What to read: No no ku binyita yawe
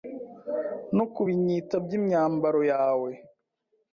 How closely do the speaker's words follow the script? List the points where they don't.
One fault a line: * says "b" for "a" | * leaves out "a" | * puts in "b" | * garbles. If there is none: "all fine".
* leaves out "no"
* puts in "by'imyambaro"